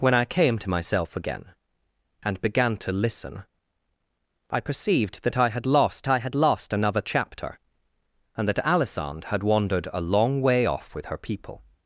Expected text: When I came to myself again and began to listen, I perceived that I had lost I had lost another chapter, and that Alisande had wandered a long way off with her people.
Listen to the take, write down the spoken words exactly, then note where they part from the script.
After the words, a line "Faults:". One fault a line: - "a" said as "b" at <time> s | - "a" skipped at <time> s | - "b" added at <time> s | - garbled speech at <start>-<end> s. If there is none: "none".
When I came to myself again and began to listen, I perceived that I had lost I had lost another chapter, and that Alisande had wandered a long way off with her people.
Faults:
none